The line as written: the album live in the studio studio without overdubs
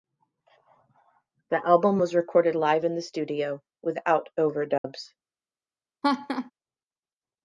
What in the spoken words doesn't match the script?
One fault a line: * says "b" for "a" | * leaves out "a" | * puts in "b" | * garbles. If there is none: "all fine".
* puts in "was recorded"
* leaves out "studio"